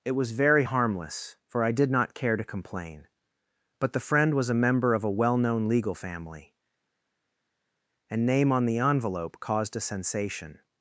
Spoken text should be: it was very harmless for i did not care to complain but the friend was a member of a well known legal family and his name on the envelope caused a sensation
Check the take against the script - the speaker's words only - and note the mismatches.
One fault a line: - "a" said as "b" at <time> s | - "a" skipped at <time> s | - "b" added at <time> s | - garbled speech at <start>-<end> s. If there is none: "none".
- "his" skipped at 8.3 s